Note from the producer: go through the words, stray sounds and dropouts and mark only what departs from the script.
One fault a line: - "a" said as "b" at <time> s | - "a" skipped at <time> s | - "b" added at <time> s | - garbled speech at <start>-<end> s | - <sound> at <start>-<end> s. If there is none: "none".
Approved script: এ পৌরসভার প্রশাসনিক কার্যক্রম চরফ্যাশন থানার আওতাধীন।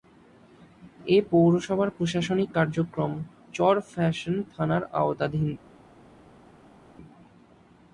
none